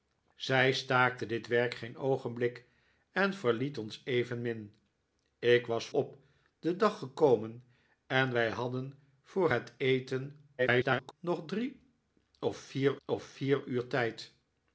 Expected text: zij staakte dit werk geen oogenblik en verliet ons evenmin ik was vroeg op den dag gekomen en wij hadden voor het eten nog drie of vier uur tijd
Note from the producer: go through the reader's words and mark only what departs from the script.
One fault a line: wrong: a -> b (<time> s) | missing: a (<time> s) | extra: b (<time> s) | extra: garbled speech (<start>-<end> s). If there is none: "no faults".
missing: vroeg (5.9 s)
extra: garbled speech (10.6-11.1 s)
extra: of vier (13.0 s)